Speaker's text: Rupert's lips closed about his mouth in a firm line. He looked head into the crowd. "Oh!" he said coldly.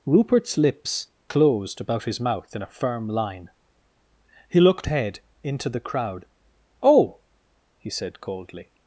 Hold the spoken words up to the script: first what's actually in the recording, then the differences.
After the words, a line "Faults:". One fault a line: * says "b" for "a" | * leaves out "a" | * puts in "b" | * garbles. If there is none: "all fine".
Rupert's lips closed about his mouth in a firm line. He looked head into the crowd. "Oh!" he said coldly.
Faults:
all fine